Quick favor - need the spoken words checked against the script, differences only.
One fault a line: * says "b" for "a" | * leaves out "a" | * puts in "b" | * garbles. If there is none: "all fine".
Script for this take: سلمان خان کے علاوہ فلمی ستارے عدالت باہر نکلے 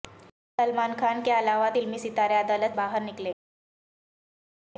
all fine